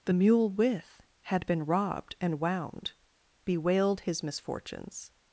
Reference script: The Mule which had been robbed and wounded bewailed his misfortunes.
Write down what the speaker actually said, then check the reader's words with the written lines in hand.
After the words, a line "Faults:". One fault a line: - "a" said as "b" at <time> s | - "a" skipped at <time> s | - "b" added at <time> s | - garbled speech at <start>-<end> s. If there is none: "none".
The Mule with had been robbed and wound bewailed his misfortunes.
Faults:
- "which" said as "with" at 0.5 s
- "wounded" said as "wound" at 2.4 s